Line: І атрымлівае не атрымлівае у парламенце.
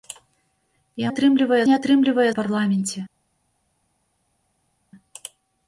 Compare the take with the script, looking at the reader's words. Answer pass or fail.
pass